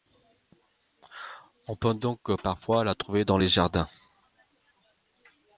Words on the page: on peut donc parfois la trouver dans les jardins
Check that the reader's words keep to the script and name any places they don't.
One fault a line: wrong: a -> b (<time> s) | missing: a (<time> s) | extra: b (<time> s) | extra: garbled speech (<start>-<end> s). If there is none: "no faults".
no faults